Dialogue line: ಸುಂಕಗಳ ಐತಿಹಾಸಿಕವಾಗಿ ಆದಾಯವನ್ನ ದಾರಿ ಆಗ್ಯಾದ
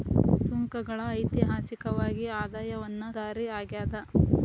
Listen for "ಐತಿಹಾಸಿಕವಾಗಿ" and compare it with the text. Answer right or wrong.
right